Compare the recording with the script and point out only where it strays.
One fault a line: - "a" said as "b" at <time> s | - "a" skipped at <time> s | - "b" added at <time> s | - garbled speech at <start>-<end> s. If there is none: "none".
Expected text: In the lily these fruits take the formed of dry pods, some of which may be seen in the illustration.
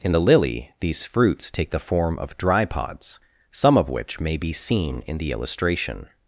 - "formed" said as "form" at 1.8 s